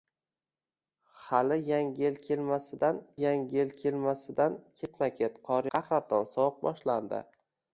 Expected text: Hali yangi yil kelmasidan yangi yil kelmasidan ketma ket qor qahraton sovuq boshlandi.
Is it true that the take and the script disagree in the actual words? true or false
false